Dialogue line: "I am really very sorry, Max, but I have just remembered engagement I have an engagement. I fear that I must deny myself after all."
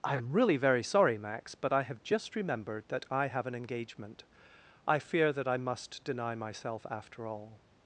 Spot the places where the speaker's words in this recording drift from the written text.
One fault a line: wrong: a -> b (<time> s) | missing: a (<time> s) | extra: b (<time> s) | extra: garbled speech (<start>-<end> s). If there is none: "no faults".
wrong: engagement -> that (2.9 s)